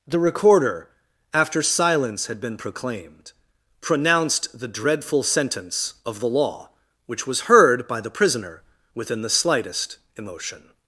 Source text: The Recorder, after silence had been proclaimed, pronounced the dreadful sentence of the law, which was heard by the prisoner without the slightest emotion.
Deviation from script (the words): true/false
true